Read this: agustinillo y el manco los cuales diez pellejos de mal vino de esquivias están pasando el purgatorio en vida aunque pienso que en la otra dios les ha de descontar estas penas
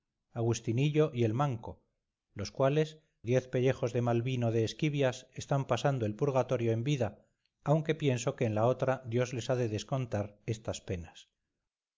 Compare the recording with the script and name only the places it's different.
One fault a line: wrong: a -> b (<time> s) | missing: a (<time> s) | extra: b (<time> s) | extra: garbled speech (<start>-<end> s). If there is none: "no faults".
no faults